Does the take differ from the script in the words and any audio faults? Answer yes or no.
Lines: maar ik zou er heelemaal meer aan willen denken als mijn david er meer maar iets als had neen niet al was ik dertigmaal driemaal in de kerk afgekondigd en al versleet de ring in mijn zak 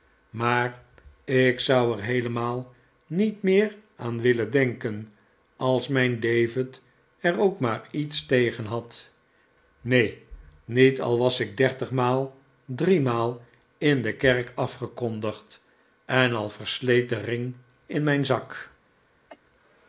yes